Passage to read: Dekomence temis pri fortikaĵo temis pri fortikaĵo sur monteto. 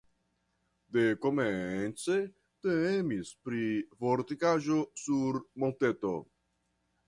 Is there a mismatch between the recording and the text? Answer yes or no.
yes